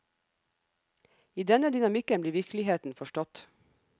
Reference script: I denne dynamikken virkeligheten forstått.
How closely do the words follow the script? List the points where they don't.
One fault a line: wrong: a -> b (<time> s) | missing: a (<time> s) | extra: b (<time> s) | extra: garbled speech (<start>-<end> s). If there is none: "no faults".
extra: blir (2.2 s)